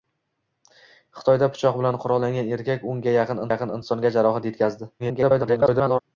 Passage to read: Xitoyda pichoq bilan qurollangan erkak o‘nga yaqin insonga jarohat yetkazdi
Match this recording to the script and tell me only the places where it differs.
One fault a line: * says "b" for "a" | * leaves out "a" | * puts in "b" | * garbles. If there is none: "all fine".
* puts in "yaqin"
* garbles